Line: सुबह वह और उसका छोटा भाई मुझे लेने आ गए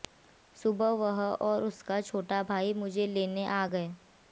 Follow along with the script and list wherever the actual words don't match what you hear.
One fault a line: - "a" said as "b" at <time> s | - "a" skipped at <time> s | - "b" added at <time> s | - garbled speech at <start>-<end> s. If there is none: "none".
none